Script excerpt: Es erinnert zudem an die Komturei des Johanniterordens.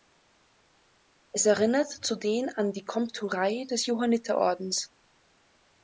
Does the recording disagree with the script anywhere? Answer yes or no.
no